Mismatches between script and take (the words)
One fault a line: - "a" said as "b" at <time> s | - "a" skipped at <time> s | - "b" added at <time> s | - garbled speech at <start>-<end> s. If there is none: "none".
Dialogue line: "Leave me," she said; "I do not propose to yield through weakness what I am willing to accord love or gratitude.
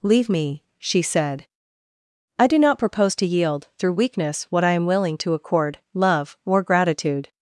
none